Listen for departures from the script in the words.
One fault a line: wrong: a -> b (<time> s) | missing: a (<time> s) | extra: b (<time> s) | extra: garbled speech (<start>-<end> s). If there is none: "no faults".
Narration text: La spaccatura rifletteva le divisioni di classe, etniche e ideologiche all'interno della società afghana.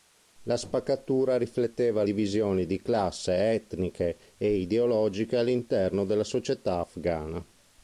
missing: le (2.0 s)